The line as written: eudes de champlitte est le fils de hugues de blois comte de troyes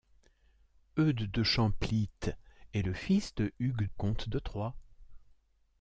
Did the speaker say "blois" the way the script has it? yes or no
no